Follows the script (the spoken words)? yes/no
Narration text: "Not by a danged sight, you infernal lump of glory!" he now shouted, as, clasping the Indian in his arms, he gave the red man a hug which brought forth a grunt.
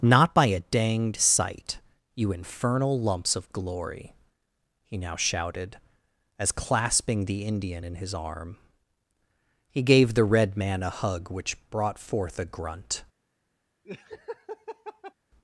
no